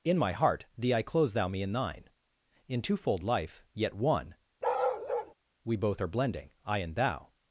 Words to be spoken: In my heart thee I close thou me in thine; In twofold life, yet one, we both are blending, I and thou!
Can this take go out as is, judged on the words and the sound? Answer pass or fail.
fail